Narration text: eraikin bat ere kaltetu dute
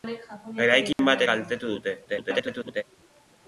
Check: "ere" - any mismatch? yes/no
yes